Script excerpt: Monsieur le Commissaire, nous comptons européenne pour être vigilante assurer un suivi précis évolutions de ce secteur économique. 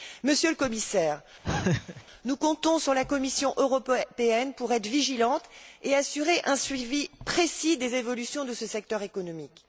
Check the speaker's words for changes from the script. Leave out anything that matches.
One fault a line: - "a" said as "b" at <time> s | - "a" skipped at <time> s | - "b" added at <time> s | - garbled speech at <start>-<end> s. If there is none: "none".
- "sur la Commission" added at 2.8 s
- "et" added at 5.8 s
- "des" added at 7.8 s